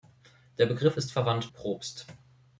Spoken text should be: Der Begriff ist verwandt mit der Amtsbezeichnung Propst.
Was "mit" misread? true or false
true